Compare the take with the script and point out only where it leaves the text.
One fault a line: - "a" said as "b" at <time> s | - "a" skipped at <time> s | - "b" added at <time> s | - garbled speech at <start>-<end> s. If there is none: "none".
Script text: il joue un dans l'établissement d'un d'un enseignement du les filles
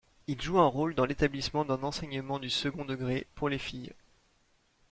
- "rôle" added at 0.7 s
- "d'un" skipped at 1.8 s
- "second degré pour" added at 2.5 s